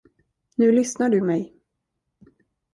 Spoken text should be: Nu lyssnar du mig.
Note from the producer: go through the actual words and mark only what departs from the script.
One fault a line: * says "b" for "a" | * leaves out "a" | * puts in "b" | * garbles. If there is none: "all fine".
all fine